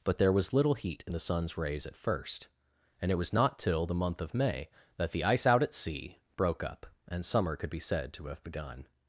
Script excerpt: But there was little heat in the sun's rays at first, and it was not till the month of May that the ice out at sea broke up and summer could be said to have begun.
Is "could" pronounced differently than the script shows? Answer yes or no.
no